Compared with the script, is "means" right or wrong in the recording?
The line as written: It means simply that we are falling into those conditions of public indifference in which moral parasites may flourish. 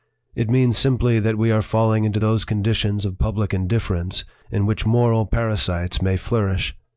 right